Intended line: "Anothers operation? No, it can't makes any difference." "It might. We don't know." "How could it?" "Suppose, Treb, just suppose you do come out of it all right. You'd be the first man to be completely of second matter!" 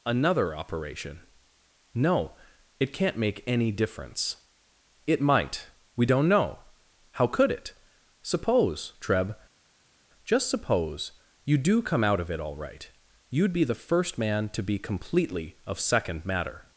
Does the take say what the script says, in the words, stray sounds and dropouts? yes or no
no